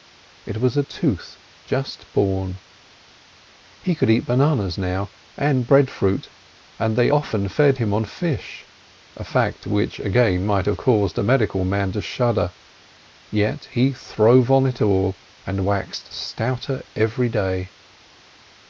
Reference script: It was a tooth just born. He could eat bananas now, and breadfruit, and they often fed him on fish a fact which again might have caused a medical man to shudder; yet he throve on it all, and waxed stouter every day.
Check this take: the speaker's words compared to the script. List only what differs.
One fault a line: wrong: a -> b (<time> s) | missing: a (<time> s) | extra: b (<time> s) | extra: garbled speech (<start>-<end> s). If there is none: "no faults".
no faults